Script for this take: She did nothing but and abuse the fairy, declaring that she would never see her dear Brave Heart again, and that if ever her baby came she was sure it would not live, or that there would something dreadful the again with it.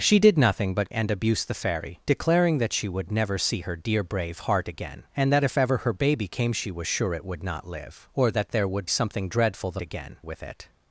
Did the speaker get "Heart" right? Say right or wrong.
right